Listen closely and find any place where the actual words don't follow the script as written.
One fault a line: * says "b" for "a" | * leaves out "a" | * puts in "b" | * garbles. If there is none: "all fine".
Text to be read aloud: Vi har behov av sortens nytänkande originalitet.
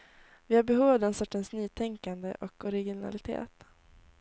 * puts in "den"
* puts in "och"